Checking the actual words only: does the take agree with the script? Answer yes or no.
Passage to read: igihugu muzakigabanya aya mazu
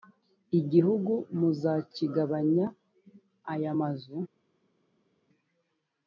yes